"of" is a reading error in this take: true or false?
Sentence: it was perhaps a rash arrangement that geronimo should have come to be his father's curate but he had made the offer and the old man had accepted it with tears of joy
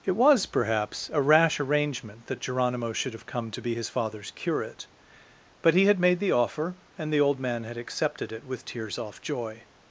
true